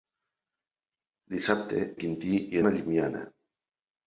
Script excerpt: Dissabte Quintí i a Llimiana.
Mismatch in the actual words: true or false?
false